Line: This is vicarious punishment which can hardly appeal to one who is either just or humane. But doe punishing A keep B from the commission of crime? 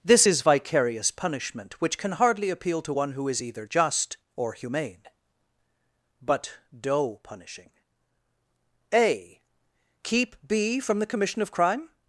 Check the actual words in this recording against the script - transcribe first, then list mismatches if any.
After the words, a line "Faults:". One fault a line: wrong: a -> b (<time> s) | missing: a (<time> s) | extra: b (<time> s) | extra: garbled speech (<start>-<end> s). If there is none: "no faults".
This is vicarious punishment which can hardly appeal to one who is either just or humane. But doe punishing A keep B from the commission of crime?
Faults:
no faults